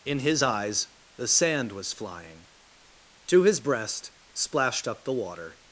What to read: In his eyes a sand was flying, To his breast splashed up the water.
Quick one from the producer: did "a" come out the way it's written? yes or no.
no